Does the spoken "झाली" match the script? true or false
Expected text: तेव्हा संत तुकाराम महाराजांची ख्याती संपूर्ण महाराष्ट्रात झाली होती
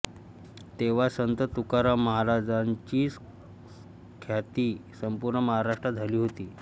true